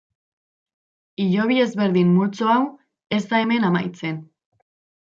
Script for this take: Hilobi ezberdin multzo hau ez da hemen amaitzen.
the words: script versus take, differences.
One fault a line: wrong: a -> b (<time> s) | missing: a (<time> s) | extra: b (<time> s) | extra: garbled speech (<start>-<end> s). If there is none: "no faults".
no faults